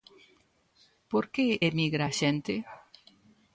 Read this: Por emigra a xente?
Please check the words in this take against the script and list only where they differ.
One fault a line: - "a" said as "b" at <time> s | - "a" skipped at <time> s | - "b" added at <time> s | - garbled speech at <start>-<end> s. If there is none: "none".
- "que" added at 1.3 s